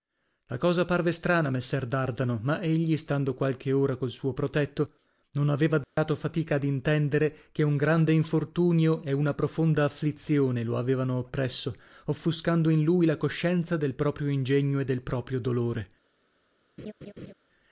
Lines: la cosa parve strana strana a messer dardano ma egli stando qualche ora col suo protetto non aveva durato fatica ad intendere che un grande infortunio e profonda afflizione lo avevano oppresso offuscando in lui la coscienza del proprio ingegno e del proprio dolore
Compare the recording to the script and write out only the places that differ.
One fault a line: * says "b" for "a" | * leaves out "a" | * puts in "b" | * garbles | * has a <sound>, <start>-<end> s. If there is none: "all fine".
* leaves out "strana"
* has a dropout, 5.8-6.0 s
* puts in "una"
* has a laugh, 16.8-17.3 s